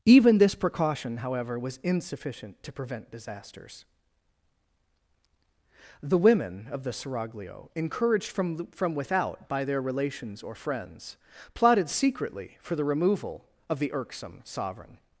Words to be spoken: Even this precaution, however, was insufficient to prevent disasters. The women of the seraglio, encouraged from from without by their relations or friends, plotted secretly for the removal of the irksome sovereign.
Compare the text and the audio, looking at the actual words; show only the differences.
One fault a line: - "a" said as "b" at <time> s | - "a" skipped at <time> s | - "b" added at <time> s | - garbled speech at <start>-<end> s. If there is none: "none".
none